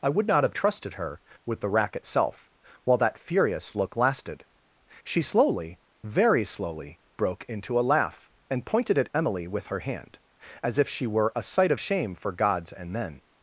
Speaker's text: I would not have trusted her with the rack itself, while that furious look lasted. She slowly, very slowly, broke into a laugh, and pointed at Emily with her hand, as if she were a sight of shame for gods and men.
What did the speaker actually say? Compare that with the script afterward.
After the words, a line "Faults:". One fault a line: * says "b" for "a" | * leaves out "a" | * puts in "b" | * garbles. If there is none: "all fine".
I would not have trusted her with the rack itself, while that furious look lasted. She slowly, very slowly, broke into a laugh, and pointed at Emily with her hand, as if she were a sight of shame for gods and men.
Faults:
all fine